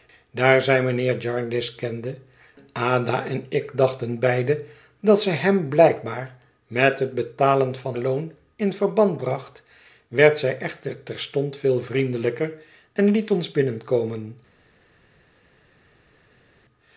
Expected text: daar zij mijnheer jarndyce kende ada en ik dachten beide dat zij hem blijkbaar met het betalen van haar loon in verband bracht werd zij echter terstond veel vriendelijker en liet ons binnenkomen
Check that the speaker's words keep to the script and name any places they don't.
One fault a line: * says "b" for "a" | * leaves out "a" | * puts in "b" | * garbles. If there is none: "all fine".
* leaves out "haar"